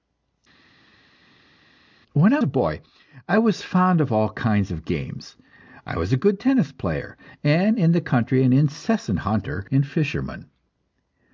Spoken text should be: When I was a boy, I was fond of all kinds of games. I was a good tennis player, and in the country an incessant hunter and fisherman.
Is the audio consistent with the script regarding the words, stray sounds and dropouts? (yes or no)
no